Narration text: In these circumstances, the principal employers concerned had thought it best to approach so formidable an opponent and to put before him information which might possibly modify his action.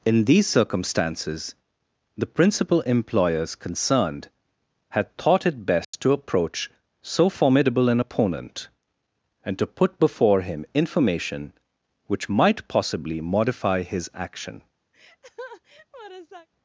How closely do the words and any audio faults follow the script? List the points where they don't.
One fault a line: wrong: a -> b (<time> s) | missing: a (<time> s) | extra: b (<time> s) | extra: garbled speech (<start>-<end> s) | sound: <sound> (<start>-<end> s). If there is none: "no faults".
sound: dropout (5.8-5.9 s)
sound: laugh (14.9-16.5 s)